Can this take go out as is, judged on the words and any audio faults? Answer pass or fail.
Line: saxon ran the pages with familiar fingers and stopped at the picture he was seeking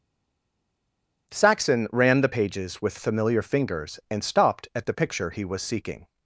pass